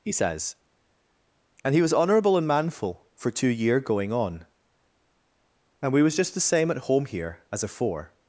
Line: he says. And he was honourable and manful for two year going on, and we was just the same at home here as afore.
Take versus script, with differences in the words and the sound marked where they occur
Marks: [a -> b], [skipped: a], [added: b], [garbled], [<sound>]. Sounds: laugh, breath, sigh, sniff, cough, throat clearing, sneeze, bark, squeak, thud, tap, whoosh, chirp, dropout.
he says. And he was honourable and manful for two year going on, and we was just the same at home here as afore.